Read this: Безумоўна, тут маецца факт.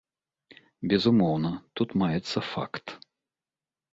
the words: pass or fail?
pass